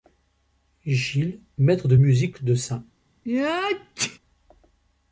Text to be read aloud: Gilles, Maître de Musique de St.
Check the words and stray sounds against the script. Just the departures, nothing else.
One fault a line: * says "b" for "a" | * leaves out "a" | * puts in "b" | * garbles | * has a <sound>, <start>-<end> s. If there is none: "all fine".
* has a sneeze, 3.2-4.2 s